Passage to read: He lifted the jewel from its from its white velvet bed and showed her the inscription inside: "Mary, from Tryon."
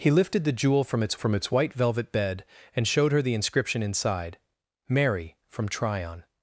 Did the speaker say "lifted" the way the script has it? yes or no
yes